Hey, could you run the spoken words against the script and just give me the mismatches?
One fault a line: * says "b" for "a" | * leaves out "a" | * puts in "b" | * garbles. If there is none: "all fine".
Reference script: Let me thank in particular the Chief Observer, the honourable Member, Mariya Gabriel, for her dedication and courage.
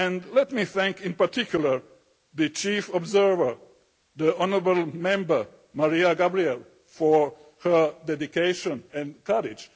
all fine